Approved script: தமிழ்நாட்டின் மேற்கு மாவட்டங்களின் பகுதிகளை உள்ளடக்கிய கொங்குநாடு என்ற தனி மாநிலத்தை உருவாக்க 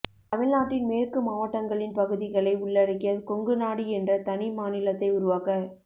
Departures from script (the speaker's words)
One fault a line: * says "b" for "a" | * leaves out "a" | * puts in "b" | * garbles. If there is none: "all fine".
all fine